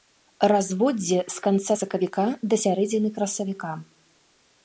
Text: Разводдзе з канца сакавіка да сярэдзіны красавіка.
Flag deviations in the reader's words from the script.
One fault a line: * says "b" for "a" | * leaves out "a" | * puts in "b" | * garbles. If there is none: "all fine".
all fine